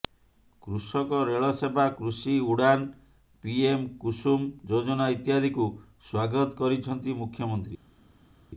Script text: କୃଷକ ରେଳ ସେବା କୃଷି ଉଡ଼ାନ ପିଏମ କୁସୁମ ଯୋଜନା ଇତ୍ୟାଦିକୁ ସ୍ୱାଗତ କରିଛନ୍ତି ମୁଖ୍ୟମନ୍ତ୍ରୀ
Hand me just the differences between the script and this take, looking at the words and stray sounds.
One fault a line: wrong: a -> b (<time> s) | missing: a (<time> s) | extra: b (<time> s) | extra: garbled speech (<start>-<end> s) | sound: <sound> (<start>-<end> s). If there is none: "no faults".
no faults